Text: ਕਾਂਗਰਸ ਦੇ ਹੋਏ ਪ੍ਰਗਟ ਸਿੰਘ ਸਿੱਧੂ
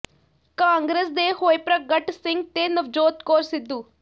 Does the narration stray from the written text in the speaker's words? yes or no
yes